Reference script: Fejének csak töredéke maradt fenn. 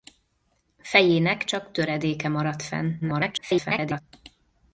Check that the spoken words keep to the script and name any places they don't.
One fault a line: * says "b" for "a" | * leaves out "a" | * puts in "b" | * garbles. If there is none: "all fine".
* garbles